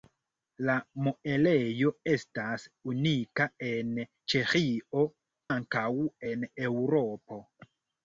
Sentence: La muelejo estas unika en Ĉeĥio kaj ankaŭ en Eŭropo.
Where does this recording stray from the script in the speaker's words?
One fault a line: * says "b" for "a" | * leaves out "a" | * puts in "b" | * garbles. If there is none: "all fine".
* leaves out "kaj"